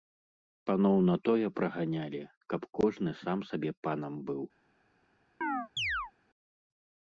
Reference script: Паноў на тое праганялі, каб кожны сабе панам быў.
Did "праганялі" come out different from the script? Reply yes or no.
no